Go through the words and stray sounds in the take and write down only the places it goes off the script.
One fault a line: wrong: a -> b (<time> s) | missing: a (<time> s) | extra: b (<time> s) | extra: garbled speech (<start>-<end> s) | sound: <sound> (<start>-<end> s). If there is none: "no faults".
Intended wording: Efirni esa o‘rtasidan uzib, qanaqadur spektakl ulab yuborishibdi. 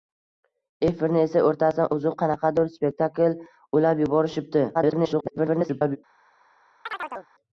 extra: garbled speech (4.7-6.0 s)
sound: chirp (6.9-7.3 s)